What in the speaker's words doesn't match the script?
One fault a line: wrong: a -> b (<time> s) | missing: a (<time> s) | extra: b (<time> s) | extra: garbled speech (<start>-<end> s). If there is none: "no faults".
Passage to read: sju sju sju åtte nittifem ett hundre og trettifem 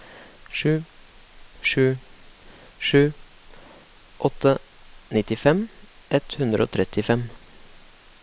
no faults